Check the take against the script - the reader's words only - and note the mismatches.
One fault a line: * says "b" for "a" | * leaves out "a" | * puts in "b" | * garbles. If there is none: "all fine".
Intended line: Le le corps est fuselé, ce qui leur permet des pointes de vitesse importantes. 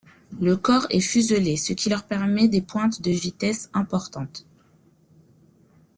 * leaves out "le"